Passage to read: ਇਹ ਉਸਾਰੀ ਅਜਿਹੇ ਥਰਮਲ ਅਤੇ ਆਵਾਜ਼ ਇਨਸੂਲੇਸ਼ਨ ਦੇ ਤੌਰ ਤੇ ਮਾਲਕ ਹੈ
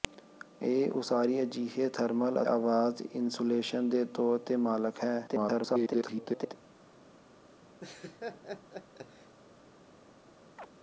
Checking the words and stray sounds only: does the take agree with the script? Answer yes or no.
no